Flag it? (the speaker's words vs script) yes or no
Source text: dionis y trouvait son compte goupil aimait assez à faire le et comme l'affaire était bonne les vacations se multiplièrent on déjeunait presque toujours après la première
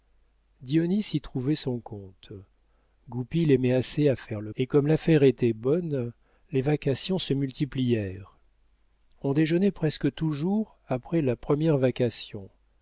no